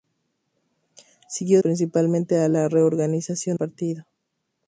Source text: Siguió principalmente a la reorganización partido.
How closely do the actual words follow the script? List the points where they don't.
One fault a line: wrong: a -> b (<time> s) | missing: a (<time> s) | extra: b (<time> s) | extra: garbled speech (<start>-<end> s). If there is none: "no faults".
no faults